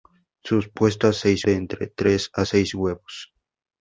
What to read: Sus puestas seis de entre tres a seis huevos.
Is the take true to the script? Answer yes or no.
yes